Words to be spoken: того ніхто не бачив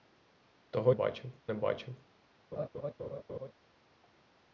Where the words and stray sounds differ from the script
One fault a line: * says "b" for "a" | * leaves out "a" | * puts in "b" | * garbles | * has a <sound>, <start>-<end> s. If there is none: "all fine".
* says "бачив" for "ніхто"
* has a laugh, 2.5-3.5 s